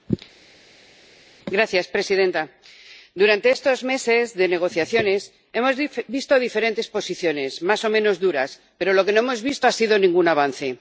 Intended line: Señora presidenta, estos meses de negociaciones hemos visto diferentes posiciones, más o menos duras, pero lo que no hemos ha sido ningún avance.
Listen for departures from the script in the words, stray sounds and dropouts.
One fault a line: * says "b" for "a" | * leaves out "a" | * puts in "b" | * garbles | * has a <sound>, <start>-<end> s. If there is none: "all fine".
* puts in "durante"
* puts in "visto"